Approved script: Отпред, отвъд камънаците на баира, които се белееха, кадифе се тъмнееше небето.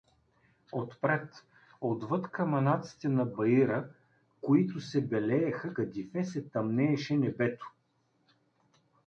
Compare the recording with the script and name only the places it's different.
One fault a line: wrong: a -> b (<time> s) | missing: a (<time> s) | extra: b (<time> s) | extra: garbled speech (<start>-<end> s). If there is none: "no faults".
no faults